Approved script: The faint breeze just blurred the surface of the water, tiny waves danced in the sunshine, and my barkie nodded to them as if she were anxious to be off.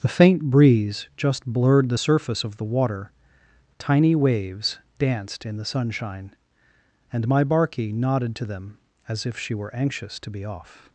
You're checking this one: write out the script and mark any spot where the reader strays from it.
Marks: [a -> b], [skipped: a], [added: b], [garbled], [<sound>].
The faint breeze just blurred the surface of the water, tiny waves danced in the sunshine, and my barkie nodded to them as if she were anxious to be off.